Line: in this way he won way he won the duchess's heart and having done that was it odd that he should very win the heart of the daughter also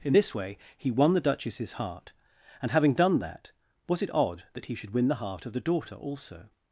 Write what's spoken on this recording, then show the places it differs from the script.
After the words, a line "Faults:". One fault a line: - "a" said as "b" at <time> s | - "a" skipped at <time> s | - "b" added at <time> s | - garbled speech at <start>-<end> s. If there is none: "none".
in this way he won the duchess's heart and having done that was it odd that he should win the heart of the daughter also
Faults:
- "way he won" skipped at 1.1 s
- "very" skipped at 4.9 s